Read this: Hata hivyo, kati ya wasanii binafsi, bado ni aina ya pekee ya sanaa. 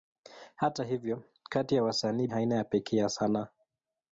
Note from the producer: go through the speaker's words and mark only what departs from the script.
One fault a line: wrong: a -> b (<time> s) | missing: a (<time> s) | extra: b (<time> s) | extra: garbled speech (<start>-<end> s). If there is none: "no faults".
missing: binafsi bado ni (2.3 s)